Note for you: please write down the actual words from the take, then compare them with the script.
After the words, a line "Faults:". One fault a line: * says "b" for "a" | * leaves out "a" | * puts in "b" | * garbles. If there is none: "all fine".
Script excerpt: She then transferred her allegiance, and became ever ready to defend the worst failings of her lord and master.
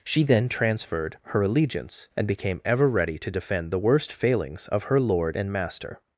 She then transferred her allegiance, and became ever ready to defend the worst failings of her lord and master.
Faults:
all fine